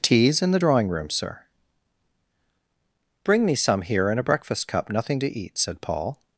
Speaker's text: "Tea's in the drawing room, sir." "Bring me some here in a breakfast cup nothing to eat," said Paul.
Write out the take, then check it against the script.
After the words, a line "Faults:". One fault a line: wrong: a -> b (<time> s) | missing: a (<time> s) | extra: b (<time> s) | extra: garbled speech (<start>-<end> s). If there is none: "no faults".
"Tea's in the drawing room, sir." "Bring me some here in a breakfast cup nothing to eat," said Paul.
Faults:
no faults